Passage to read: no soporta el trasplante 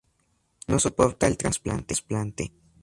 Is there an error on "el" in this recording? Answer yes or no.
no